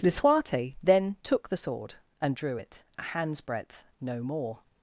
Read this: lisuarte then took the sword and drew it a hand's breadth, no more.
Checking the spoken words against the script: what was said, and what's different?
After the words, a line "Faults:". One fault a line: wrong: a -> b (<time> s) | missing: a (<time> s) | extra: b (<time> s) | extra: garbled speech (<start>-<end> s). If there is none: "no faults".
lisuarte then took the sword and drew it a hand's breadth, no more.
Faults:
no faults